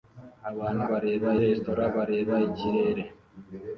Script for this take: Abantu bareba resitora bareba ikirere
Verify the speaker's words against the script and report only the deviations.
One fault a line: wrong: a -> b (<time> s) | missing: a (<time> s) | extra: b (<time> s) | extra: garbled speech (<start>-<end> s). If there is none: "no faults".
no faults